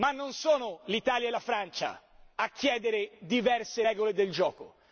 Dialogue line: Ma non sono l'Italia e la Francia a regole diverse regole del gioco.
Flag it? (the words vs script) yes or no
yes